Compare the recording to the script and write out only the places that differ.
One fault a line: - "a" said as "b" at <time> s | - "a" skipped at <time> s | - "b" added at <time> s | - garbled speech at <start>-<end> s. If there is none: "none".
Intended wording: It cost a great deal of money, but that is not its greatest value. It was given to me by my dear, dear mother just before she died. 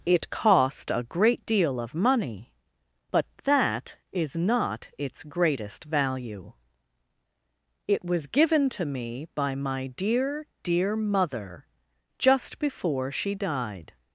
none